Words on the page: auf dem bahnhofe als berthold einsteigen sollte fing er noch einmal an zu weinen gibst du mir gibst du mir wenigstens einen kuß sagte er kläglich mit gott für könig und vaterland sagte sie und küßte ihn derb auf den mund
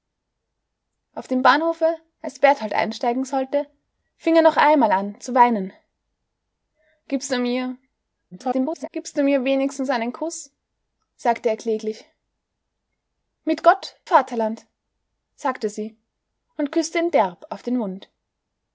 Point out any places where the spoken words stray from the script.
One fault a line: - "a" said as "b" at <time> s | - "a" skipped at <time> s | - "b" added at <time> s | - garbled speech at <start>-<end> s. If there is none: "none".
- garbled speech at 8.3-8.9 s
- "für könig und" skipped at 14.0 s